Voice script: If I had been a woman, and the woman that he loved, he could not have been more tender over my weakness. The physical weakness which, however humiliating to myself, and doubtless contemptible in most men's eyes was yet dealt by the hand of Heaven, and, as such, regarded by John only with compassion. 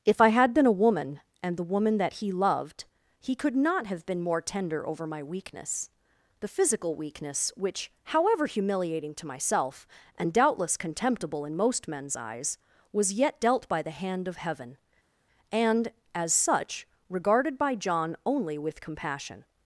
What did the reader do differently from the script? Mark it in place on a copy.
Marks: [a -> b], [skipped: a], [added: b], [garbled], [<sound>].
If I had been a woman, and the woman that he loved, he could not have been more tender over my weakness. The physical weakness which, however humiliating to myself, and doubtless contemptible in most men's eyes was yet dealt by the hand of Heaven, and, as such, regarded by John only with compassion.